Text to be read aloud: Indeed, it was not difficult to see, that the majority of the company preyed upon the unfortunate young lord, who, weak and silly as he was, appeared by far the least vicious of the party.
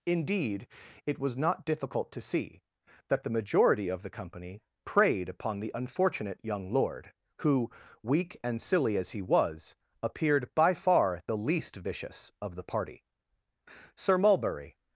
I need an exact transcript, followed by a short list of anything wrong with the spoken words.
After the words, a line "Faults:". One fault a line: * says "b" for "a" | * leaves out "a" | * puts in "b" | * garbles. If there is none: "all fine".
Indeed, it was not difficult to see, that the majority of the company preyed upon the unfortunate young lord, who, weak and silly as he was, appeared by far the least vicious of the party. Sir Mulberry
Faults:
* puts in "Sir Mulberry"